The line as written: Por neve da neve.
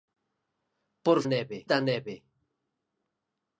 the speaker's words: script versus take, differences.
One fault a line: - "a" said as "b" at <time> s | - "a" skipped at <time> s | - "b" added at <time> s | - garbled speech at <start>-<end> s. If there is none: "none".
none